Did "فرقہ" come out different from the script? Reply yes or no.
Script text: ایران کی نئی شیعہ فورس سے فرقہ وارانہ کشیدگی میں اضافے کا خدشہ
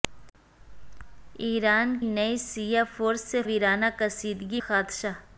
yes